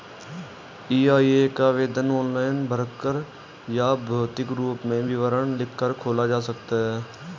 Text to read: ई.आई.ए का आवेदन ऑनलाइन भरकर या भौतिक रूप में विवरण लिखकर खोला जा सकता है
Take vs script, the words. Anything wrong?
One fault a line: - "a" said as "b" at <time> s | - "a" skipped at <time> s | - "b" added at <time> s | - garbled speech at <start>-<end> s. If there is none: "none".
none